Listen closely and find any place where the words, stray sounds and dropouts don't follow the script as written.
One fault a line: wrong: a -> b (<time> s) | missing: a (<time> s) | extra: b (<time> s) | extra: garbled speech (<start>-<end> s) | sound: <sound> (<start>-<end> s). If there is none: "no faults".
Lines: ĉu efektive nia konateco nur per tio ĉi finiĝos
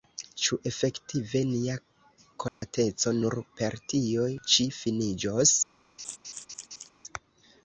sound: dropout (2.5-2.6 s)
sound: laugh (6.0-6.9 s)